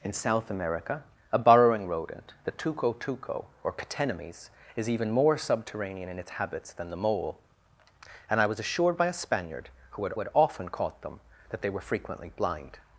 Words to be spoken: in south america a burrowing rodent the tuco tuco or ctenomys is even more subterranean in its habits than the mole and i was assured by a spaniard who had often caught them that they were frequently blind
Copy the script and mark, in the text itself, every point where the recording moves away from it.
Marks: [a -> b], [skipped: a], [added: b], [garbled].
in south america a burrowing rodent the tuco tuco or ctenomys is even more subterranean in its habits than the mole and i was assured by a spaniard who had [added: had] often caught them that they were frequently blind